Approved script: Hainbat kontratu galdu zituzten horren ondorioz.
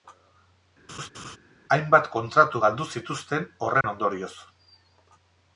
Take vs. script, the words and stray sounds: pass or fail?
fail